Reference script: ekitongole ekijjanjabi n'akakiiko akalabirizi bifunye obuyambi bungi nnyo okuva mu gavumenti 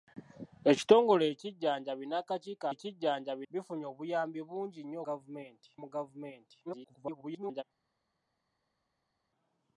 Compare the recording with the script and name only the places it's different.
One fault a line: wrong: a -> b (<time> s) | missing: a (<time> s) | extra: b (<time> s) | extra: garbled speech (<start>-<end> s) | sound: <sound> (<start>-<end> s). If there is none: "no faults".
wrong: akalabirizi -> ekijjanjabi (2.7 s)
wrong: okuva -> gavumenti (5.1 s)
extra: garbled speech (6.7-7.6 s)